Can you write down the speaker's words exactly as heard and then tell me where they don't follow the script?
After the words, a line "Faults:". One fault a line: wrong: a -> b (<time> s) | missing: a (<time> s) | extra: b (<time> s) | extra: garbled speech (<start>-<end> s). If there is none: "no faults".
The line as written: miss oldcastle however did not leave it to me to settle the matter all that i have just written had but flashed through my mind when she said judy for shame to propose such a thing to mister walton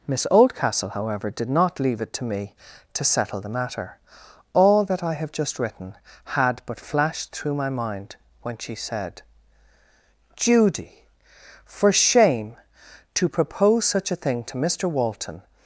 miss oldcastle however did not leave it to me to settle the matter all that i have just written had but flashed through my mind when she said judy for shame to propose such a thing to mister walton
Faults:
no faults